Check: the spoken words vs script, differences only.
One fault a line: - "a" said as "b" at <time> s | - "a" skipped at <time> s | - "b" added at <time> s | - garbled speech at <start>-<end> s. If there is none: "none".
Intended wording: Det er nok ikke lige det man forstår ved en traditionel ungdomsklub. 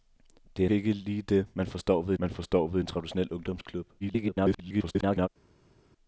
- "nok" skipped at 0.7 s
- "man forstår ved" added at 2.2 s
- garbled speech at 4.0-5.3 s